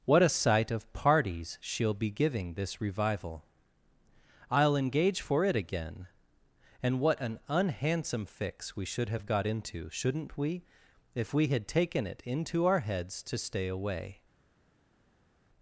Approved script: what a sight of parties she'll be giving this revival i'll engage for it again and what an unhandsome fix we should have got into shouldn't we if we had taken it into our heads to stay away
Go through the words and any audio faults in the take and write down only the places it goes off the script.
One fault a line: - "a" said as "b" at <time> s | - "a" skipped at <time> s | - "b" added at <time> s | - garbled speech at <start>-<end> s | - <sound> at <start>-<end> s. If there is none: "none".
none